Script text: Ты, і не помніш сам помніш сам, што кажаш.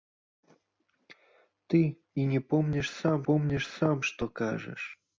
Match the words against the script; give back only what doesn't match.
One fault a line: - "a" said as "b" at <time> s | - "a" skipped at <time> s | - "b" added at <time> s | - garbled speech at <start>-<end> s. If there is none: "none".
none